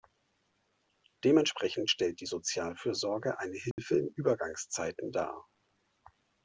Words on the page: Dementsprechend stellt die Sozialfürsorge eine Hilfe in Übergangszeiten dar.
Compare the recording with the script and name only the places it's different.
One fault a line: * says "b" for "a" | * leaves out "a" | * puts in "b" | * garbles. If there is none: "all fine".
all fine